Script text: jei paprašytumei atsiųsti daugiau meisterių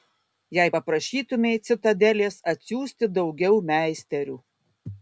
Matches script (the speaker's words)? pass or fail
fail